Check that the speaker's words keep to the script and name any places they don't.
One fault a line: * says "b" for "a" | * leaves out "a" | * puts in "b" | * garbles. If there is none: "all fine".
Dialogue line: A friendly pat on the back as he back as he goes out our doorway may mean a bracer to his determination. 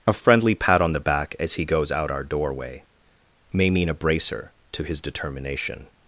* leaves out "back as he"